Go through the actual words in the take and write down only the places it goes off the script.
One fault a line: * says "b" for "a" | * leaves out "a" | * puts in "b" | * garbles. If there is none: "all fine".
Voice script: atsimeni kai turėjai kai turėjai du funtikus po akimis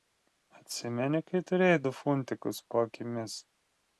* leaves out "kai turėjai"